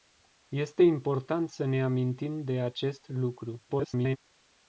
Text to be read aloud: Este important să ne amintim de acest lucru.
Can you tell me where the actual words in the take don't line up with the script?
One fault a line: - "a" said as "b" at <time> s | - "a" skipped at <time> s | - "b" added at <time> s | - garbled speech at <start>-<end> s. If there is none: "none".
- garbled speech at 3.7-4.2 s